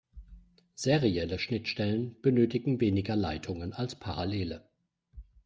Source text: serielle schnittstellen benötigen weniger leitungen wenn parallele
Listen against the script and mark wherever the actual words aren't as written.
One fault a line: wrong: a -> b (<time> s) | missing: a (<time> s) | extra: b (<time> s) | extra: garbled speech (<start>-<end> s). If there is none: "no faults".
wrong: wenn -> als (3.7 s)